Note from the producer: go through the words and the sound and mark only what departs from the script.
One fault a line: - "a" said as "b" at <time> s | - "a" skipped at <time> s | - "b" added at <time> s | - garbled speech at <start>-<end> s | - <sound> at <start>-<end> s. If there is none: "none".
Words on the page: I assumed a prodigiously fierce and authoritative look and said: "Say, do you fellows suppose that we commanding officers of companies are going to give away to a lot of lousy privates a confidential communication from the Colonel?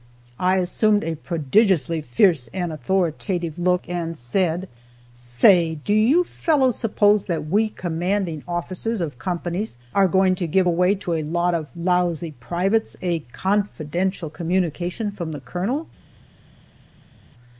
none